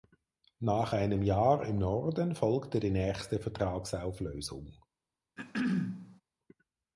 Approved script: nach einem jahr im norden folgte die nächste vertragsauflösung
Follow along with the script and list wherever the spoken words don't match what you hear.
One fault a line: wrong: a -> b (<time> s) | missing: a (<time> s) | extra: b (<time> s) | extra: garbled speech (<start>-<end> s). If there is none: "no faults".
no faults